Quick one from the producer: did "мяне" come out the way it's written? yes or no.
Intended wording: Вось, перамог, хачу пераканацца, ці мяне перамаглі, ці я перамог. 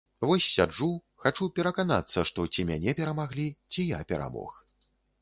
yes